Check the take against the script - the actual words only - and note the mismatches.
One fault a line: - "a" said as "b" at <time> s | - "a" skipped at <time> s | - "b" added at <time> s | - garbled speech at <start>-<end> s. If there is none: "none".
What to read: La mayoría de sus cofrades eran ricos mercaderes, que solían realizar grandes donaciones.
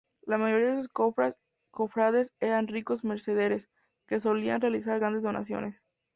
none